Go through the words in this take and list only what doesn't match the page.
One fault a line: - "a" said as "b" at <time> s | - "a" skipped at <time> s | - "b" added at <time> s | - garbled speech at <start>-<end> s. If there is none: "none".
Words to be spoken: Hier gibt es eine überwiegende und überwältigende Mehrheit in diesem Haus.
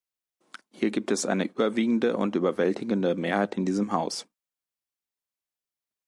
none